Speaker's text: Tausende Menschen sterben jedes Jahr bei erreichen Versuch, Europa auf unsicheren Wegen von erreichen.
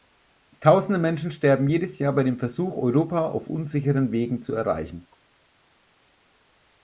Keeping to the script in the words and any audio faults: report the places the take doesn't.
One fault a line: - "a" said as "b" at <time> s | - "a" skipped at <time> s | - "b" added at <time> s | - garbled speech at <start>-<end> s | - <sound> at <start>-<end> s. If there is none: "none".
- "erreichen" said as "dem" at 2.2 s
- "von" said as "zu" at 4.4 s